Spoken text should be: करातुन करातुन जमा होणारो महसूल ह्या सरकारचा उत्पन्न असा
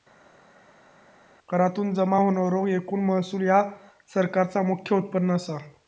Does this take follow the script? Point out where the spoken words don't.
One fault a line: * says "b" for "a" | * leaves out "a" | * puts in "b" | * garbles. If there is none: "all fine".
* leaves out "करातुन"
* puts in "एकूण"
* puts in "मुख्य"